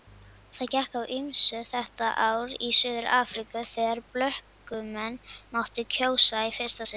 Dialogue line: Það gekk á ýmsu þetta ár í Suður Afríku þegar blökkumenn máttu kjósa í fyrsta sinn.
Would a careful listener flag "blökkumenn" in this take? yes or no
no